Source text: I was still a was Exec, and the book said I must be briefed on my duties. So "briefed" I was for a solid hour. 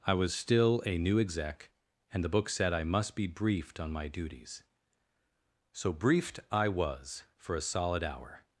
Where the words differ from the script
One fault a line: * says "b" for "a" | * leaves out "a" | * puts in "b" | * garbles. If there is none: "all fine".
* says "new" for "was"